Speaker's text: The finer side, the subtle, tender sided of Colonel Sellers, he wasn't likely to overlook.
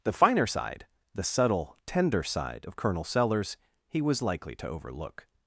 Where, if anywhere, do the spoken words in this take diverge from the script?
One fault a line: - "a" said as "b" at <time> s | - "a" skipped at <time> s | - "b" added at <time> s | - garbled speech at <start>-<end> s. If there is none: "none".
- "sided" said as "side" at 2.2 s
- "wasn't" said as "was" at 4.0 s